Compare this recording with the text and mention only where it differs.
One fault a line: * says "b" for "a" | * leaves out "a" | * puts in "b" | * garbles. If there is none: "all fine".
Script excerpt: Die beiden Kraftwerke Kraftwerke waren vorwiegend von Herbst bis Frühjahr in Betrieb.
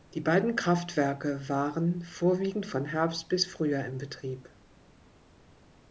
* leaves out "Kraftwerke"